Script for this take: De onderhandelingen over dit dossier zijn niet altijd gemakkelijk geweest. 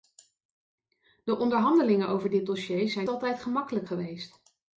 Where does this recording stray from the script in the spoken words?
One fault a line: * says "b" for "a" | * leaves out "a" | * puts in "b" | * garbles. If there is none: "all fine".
* leaves out "niet"